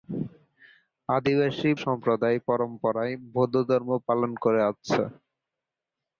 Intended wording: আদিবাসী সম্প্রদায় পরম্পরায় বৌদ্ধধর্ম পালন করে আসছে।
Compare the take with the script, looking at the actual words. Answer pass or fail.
pass